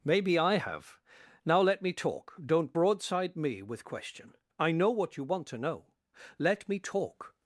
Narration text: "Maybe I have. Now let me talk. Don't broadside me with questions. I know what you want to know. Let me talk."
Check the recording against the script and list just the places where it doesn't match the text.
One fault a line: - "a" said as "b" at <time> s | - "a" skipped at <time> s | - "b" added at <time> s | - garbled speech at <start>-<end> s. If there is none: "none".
- "questions" said as "question" at 3.8 s